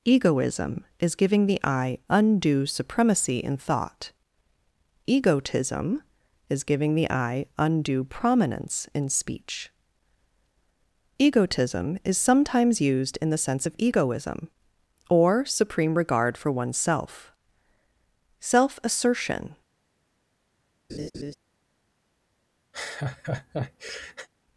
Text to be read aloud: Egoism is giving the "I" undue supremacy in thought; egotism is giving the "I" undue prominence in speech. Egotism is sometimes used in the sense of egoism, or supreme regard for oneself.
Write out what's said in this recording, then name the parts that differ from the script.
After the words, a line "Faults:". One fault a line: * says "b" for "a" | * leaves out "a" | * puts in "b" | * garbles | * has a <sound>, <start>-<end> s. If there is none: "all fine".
Egoism is giving the "I" undue supremacy in thought; egotism is giving the "I" undue prominence in speech. Egotism is sometimes used in the sense of egoism, or supreme regard for oneself. Self assertion
Faults:
* puts in "Self assertion"
* has a laugh, 20.9-21.3 s
* has a laugh, 22.7-24.3 s